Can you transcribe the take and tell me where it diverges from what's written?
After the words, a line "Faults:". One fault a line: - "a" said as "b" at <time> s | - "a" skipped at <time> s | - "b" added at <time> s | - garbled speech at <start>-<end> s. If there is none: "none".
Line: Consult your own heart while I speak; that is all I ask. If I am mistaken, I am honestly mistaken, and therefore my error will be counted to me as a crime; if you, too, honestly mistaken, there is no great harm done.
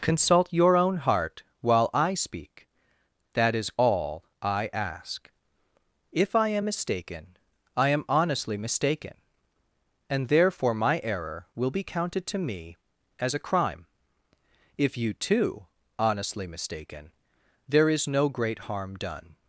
Consult your own heart while I speak; that is all I ask. If I am mistaken, I am honestly mistaken, and therefore my error will be counted to me as a crime; if you, too, honestly mistaken, there is no great harm done.
Faults:
none